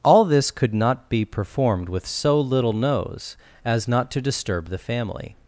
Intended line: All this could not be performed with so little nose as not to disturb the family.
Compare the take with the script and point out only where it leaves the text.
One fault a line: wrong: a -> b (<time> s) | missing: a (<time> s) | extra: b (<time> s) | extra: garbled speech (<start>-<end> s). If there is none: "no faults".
no faults